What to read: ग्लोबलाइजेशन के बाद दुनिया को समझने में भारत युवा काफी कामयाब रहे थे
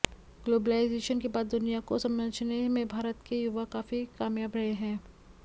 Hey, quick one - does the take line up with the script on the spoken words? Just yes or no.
no